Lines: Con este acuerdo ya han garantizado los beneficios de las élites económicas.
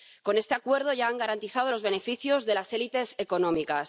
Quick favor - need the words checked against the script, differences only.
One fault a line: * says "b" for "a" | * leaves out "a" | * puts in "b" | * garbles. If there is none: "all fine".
all fine